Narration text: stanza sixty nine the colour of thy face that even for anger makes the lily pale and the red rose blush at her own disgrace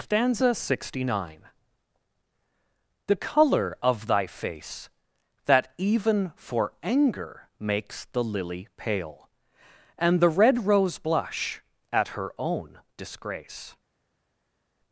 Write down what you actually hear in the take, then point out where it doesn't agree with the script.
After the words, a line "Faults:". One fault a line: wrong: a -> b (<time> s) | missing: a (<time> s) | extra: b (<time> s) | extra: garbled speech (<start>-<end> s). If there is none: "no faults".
stanza sixty nine the colour of thy face that even for anger makes the lily pale and the red rose blush at her own disgrace
Faults:
no faults